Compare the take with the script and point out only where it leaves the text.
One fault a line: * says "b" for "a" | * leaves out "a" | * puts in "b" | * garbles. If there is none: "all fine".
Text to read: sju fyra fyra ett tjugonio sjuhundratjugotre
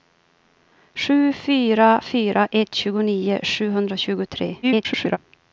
* garbles